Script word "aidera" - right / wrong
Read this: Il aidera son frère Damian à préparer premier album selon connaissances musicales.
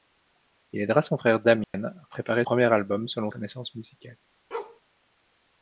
right